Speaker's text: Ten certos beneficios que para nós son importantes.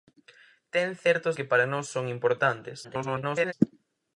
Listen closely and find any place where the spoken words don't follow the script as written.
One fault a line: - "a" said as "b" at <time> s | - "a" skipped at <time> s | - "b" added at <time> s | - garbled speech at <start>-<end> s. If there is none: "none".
- "beneficios" skipped at 1.4 s
- garbled speech at 2.8-3.5 s